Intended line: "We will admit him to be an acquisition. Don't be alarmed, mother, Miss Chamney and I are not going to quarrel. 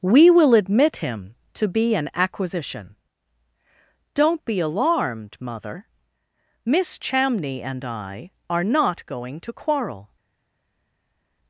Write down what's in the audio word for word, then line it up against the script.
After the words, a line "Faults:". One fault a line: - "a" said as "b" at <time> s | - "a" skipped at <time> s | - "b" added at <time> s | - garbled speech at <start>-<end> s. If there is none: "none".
"We will admit him to be an acquisition. Don't be alarmed, mother, Miss Chamney and I are not going to quarrel.
Faults:
none